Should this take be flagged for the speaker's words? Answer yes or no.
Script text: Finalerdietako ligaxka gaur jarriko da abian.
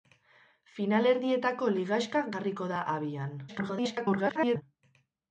yes